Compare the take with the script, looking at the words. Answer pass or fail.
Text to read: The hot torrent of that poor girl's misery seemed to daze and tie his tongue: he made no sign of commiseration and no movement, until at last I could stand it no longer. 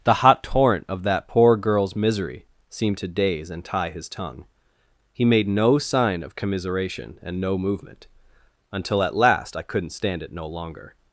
fail